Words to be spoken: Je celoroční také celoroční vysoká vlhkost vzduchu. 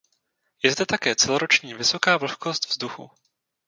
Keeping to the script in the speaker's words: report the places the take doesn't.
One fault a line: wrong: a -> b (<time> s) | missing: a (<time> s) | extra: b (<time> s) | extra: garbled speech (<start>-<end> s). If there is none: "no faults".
wrong: celoroční -> zde (0.7 s)